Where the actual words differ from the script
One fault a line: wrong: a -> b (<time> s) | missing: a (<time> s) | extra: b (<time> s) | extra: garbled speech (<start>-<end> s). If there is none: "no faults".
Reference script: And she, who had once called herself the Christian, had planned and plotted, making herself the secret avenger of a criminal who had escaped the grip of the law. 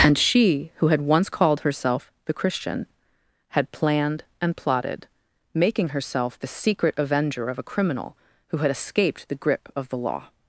no faults